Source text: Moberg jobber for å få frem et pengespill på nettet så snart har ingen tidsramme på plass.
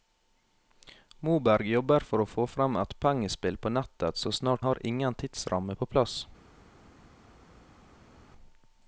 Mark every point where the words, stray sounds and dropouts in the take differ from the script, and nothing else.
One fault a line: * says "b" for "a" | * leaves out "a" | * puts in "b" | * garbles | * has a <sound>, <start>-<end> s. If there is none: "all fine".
all fine